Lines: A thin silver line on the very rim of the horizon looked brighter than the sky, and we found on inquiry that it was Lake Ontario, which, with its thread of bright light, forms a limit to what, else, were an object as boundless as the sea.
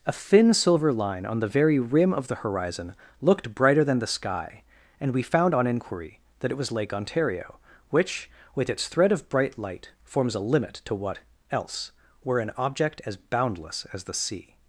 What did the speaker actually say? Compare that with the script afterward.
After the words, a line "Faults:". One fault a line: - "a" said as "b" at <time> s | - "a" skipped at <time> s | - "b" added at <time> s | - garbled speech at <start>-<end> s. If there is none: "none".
A thin silver line on the very rim of the horizon looked brighter than the sky, and we found on inquiry that it was Lake Ontario, which, with its thread of bright light, forms a limit to what, else, were an object as boundless as the sea.
Faults:
none